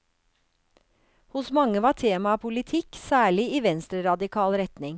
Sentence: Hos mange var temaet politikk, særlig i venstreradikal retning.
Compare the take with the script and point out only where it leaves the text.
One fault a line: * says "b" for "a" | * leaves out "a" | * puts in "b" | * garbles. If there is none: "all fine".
all fine